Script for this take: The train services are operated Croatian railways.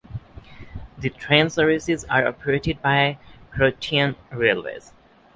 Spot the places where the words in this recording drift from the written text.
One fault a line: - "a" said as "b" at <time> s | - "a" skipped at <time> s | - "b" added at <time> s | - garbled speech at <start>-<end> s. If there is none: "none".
- "by" added at 2.8 s